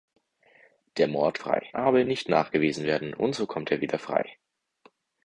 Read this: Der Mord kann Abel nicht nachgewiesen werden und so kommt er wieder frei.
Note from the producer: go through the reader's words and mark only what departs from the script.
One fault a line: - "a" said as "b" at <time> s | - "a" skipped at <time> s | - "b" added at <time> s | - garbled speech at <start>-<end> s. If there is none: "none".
- "kann" said as "frei" at 1.4 s